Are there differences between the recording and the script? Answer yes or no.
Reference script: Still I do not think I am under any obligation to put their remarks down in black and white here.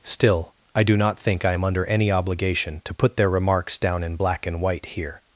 no